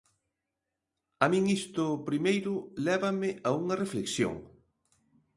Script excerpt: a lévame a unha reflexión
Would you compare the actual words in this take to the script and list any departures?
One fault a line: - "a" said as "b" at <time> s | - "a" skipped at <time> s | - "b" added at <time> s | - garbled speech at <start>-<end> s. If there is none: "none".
- "min isto primeiro" added at 1.3 s